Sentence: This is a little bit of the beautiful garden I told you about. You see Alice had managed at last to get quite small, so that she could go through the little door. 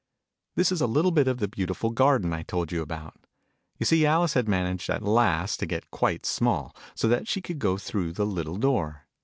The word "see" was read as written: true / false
true